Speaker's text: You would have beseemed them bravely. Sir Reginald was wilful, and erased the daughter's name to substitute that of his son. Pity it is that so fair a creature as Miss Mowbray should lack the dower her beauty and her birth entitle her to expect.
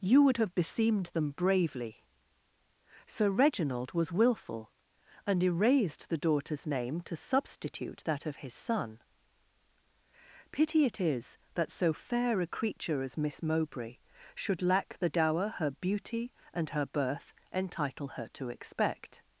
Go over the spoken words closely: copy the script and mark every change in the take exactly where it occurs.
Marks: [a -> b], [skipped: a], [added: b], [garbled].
You would have beseemed them bravely. Sir Reginald was wilful, and erased the daughter's name to substitute that of his son. Pity it is that so fair a creature as Miss Mowbray should lack the dower her beauty and her birth entitle her to expect.